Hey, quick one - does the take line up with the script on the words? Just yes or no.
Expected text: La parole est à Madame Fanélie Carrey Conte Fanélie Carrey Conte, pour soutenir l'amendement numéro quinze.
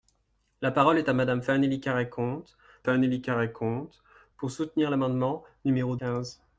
yes